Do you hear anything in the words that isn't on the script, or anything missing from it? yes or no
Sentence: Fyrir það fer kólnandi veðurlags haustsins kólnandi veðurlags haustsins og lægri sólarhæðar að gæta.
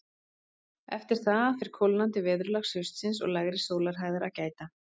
yes